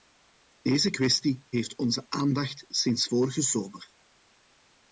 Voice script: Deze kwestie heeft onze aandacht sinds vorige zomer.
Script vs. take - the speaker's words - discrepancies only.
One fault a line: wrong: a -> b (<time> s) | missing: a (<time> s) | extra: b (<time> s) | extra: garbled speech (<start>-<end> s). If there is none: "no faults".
no faults